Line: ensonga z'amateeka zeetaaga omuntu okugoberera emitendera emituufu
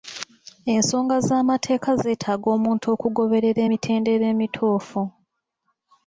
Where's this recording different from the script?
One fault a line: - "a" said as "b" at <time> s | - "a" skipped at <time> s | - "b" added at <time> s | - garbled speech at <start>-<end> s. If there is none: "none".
none